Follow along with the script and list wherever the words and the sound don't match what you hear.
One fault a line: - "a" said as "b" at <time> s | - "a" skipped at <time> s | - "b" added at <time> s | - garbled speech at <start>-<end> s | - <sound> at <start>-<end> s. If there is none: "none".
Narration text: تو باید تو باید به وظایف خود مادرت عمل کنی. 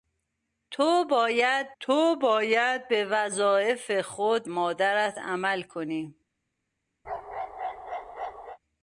- bark at 7.0-8.6 s